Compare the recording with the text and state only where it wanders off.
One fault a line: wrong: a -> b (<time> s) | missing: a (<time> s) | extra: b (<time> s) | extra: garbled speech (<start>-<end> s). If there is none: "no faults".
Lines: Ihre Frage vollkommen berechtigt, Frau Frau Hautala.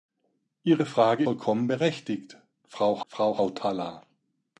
no faults